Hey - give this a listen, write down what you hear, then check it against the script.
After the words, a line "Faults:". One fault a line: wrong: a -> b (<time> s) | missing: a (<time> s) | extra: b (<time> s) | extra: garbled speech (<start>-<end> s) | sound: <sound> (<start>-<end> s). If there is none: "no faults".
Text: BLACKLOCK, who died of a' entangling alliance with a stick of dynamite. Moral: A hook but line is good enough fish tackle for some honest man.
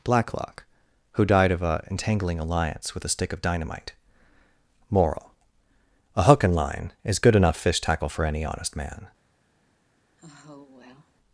BLACKLOCK, who died of a' entangling alliance with a stick of dynamite. Moral: A hook and line is good enough fish tackle for any honest man.
Faults:
wrong: but -> and (6.4 s)
wrong: some -> any (8.2 s)
sound: sigh (10.2-11.1 s)